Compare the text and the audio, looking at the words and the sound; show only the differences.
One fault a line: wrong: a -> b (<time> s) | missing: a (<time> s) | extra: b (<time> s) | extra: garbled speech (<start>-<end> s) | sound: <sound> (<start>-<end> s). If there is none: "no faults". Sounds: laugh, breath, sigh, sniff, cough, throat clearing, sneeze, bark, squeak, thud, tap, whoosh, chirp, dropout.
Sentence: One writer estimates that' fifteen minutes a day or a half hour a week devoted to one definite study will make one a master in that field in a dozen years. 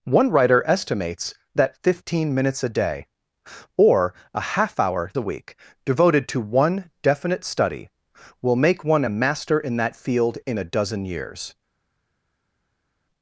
no faults